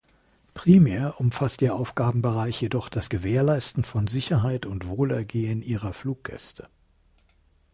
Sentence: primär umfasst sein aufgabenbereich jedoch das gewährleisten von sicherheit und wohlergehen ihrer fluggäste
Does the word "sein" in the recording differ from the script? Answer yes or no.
yes